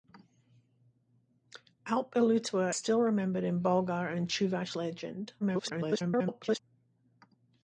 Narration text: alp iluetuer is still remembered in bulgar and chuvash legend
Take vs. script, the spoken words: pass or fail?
fail